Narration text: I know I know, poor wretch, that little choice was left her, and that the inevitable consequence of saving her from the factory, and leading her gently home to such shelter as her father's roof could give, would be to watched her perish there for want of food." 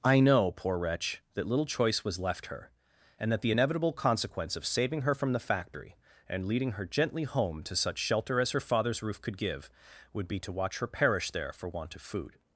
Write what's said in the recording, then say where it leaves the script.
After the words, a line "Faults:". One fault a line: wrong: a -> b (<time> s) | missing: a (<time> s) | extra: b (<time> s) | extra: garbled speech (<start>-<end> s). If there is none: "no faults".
I know, poor wretch, that little choice was left her, and that the inevitable consequence of saving her from the factory, and leading her gently home to such shelter as her father's roof could give, would be to watch her perish there for want of food."
Faults:
missing: I know (0.5 s)
wrong: watched -> watch (10.5 s)